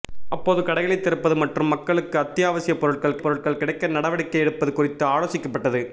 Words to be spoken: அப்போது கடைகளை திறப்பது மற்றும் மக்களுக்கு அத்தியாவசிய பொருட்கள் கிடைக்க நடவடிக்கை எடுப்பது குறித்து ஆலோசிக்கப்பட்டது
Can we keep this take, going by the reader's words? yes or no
no